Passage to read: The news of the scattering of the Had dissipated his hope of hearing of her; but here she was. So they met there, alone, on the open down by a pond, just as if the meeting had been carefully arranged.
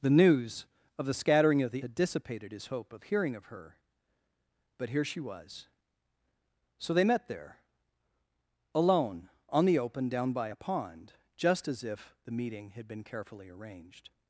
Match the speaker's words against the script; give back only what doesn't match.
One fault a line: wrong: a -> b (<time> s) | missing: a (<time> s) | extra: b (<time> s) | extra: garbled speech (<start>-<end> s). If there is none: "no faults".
no faults